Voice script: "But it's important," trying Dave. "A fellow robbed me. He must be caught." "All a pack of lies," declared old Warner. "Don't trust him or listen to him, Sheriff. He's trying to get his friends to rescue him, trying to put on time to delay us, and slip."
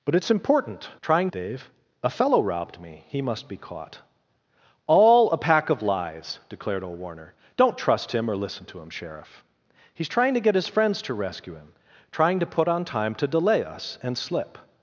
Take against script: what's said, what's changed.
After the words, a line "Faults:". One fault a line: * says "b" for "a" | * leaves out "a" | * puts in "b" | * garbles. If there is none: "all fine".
"But it's important," trying Dave. "A fellow robbed me. He must be caught." "All a pack of lies," declared old Warner. "Don't trust him or listen to him, Sheriff. He's trying to get his friends to rescue him, trying to put on time to delay us, and slip."
Faults:
all fine